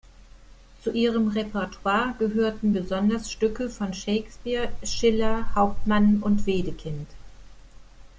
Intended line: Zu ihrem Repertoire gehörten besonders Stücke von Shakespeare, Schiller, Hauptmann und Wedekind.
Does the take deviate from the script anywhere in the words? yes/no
no